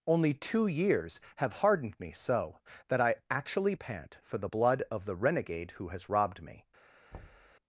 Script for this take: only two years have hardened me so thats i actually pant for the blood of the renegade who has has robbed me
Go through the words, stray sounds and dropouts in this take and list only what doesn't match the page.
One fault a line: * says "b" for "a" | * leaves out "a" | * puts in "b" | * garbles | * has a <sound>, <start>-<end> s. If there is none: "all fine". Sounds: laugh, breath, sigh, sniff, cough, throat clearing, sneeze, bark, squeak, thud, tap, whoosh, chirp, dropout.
* says "that" for "thats"
* leaves out "has"
* has a thud, 7.1-7.6 s